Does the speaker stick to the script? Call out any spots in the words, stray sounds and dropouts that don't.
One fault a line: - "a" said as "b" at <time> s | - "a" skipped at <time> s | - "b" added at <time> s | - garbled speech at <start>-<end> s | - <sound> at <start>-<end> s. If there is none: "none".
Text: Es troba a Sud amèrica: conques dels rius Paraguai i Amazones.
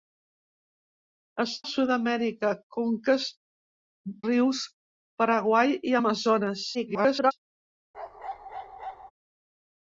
- "troba" skipped at 1.5 s
- "dels" skipped at 3.3 s
- garbled speech at 6.7-7.3 s
- bark at 7.9-9.1 s